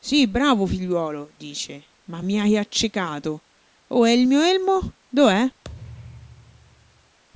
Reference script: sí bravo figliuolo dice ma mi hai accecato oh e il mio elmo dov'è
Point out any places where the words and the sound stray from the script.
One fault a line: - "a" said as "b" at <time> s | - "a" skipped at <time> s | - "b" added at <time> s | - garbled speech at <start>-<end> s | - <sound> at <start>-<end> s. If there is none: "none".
- thud at 5.6-7.2 s